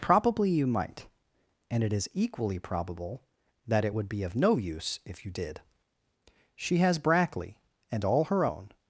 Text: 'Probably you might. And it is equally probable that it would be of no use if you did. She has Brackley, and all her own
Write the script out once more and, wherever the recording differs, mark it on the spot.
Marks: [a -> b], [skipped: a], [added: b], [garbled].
'Probably you might. And it is equally probable that it would be of no use if you did. She has Brackley, and all her own